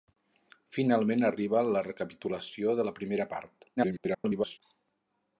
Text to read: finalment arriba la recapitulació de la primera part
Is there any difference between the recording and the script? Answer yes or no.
yes